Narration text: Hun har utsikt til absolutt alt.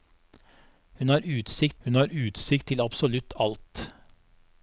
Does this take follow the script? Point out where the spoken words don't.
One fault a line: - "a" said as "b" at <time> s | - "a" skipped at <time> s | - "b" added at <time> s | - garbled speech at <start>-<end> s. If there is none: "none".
- "hun har utsikt" added at 1.8 s